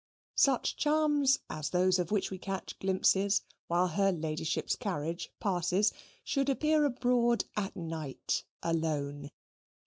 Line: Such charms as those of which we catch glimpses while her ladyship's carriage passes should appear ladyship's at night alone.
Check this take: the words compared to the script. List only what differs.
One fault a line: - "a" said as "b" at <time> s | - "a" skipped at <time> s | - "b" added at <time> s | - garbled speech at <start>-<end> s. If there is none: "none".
- "ladyship's" said as "abroad" at 6.9 s